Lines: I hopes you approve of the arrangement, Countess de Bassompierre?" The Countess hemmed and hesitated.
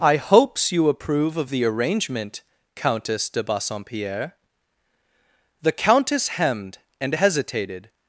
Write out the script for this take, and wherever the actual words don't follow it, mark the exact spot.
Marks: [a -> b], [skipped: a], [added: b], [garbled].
I hopes you approve of the arrangement, Countess de Bassompierre?" The Countess hemmed and hesitated.